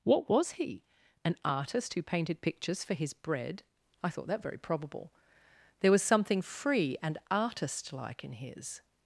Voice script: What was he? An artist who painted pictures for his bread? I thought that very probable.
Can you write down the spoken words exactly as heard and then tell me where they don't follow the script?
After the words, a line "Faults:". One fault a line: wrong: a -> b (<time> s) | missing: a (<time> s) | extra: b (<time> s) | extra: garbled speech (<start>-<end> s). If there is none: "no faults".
What was he? An artist who painted pictures for his bread? I thought that very probable. There was something free and artist like in his
Faults:
extra: There was something free and artist like in his (5.8 s)